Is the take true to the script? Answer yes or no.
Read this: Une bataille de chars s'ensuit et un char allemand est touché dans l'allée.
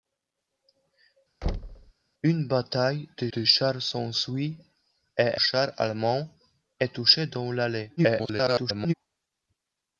no